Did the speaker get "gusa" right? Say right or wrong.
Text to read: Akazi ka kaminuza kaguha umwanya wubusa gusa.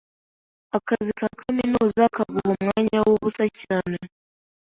wrong